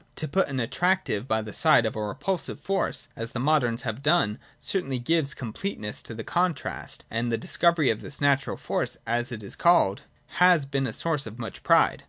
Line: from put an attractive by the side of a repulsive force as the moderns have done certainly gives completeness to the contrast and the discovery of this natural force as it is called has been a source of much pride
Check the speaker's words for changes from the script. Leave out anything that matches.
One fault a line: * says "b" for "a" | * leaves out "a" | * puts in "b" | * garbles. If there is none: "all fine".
* says "to" for "from"